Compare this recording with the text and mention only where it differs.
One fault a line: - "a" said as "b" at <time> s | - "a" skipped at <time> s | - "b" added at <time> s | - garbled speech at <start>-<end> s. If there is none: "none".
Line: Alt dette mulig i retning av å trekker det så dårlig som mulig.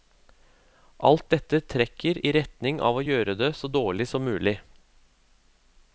- "mulig" said as "trekker" at 1.7 s
- "trekker" said as "gjøre" at 3.1 s